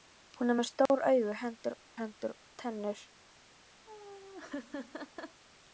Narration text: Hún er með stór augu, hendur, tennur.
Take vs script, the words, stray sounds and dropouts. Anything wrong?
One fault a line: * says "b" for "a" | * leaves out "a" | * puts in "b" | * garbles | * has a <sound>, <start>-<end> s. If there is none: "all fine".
* has a dropout, 0.9-0.9 s
* puts in "hendur"
* has a laugh, 3.9-5.4 s